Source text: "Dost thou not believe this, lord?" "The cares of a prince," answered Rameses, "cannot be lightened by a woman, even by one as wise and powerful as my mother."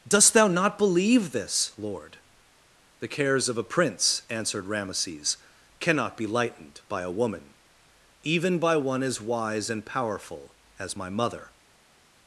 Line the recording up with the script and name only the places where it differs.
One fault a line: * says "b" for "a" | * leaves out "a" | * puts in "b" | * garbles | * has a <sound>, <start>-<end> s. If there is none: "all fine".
all fine